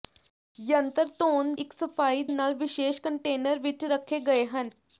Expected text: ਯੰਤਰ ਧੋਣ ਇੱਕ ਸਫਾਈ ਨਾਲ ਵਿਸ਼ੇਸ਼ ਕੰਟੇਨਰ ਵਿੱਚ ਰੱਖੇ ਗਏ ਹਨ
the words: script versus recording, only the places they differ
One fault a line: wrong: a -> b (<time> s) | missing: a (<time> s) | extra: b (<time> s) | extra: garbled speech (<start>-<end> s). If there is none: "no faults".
no faults